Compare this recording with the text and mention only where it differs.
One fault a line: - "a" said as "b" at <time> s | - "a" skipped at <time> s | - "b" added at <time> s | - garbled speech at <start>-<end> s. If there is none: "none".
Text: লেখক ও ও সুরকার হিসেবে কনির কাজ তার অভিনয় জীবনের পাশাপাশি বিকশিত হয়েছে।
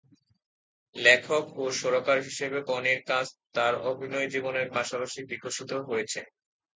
- "ও" skipped at 1.8 s